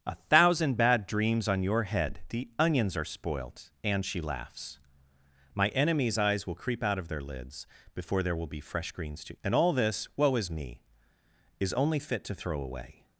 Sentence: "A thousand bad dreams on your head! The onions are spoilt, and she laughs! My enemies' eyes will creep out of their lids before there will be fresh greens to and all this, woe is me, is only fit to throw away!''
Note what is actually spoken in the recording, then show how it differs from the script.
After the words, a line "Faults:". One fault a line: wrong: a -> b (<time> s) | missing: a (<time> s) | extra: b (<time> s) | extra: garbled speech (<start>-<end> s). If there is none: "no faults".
"A thousand bad dreams on your head! The onions are spoilt, and she laughs! My enemies' eyes will creep out of their lids before there will be fresh greens to and all this, woe is me, is only fit to throw away!''
Faults:
no faults